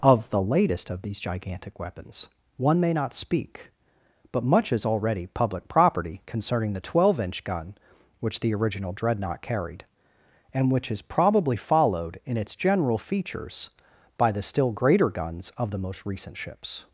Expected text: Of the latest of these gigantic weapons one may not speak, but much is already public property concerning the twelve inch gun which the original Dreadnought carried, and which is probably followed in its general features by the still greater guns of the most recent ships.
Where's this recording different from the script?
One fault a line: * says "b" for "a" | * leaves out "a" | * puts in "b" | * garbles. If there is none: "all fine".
all fine